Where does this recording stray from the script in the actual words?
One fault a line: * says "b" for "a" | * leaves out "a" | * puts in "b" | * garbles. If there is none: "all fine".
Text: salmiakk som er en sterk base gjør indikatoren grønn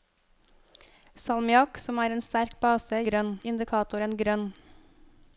* says "grønn" for "gjør"